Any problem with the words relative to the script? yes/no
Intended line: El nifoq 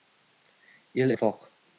no